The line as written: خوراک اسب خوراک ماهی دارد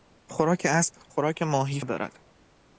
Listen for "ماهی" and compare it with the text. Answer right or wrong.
right